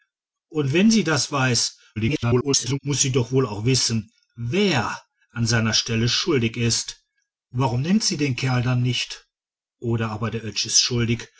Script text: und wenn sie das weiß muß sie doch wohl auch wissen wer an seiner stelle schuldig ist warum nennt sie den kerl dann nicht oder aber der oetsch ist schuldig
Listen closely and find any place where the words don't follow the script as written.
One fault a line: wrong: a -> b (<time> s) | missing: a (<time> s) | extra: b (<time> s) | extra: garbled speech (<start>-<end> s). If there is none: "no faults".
extra: garbled speech (2.0-2.8 s)